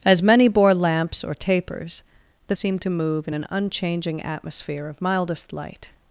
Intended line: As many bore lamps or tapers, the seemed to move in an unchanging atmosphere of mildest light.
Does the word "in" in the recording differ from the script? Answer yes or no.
no